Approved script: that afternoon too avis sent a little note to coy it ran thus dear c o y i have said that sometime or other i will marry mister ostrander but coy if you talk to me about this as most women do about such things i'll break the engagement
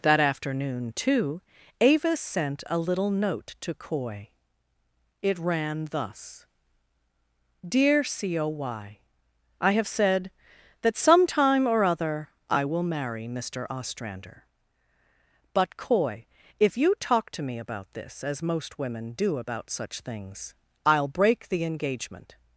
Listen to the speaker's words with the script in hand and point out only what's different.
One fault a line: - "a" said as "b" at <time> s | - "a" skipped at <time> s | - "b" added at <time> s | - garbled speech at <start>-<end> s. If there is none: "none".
none